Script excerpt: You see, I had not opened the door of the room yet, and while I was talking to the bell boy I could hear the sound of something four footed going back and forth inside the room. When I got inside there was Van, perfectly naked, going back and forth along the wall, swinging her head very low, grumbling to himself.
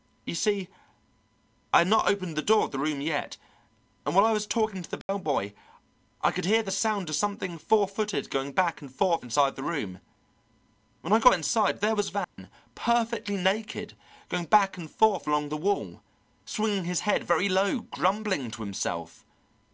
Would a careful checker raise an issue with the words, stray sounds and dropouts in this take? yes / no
yes